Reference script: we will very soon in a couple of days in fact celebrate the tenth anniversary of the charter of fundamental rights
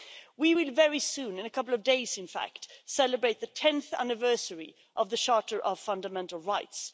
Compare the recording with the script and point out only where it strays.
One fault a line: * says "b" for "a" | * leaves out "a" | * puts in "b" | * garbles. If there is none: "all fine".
all fine